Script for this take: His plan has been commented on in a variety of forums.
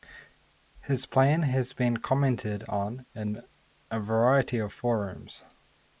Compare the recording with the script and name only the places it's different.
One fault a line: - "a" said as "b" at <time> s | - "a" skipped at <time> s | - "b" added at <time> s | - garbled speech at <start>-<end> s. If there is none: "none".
none